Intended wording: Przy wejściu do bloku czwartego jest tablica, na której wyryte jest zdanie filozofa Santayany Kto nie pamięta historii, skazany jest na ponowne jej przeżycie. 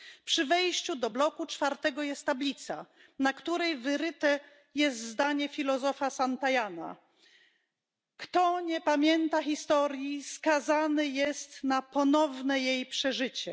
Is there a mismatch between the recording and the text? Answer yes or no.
no